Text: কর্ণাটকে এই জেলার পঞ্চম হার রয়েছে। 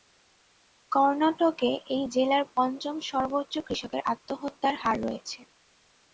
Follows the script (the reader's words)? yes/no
no